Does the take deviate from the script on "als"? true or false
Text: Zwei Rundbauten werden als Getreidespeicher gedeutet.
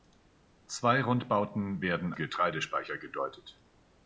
true